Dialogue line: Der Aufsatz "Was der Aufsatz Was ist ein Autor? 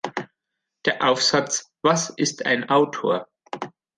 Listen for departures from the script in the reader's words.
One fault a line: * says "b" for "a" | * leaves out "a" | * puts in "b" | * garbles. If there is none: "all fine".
* leaves out "der Aufsatz Was"